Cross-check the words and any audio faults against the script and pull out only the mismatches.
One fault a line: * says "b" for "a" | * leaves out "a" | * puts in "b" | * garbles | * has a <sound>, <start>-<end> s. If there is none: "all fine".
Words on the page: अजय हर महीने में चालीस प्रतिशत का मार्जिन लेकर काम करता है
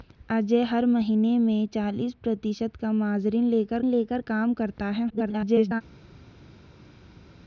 * puts in "लेकर"
* garbles